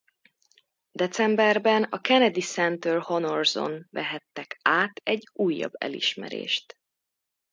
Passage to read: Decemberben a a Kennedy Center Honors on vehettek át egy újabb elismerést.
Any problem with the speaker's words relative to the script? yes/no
yes